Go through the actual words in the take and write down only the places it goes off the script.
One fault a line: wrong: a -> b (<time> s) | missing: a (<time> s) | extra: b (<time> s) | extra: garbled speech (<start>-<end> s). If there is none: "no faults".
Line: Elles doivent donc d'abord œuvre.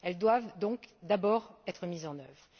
extra: être mises en (1.7 s)